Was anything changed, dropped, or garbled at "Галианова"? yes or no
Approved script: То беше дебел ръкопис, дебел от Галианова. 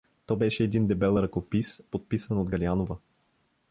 no